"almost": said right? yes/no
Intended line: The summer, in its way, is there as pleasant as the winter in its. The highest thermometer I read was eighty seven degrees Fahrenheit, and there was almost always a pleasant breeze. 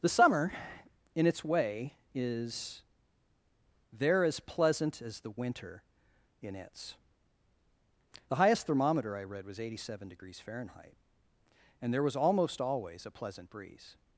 yes